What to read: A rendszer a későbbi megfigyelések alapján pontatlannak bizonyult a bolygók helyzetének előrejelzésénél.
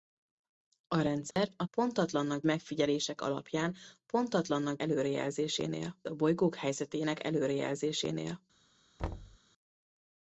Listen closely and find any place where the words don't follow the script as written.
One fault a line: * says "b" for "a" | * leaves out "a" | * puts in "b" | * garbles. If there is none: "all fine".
* says "pontatlannak" for "későbbi"
* says "előrejelzésénél" for "bizonyult"